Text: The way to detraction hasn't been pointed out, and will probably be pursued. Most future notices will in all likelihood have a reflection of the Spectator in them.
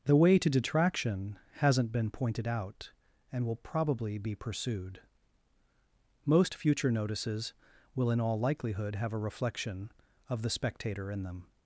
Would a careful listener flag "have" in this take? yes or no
no